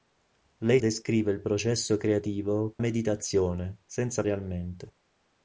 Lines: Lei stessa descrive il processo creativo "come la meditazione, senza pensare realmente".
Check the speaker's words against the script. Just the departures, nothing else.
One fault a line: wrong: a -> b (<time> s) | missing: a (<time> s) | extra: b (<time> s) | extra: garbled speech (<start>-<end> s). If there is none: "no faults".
missing: stessa (0.8 s)
missing: come la (2.8 s)
missing: pensare (4.2 s)